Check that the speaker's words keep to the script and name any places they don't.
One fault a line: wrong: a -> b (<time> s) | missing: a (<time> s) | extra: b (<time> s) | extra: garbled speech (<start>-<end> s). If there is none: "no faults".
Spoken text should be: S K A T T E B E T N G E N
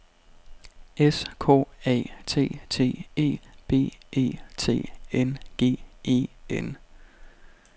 no faults